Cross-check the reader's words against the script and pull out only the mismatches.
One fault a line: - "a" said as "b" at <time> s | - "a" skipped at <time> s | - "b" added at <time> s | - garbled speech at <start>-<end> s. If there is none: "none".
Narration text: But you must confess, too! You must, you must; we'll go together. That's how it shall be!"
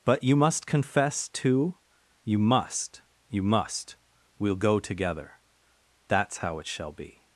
none